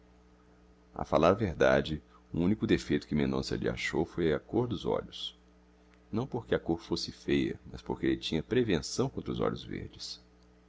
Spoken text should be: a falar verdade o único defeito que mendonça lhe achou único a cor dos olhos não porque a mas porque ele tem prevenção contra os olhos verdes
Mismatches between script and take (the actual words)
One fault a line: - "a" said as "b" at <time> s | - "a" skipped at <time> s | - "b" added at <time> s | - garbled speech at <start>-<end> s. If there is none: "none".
- "único" said as "foi" at 4.0 s
- "cor fosse feia" added at 6.6 s
- "tem" said as "tinha" at 8.2 s